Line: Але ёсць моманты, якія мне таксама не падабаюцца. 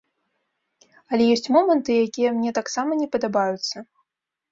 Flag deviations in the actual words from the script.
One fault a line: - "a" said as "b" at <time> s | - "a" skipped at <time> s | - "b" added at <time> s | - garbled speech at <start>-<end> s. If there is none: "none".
none